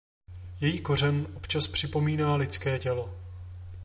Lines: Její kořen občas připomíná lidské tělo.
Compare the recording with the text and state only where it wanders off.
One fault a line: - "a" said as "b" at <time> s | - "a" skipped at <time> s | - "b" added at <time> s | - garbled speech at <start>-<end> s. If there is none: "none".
none